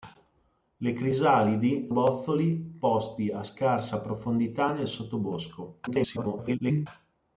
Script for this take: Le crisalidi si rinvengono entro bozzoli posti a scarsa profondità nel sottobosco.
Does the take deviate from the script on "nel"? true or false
false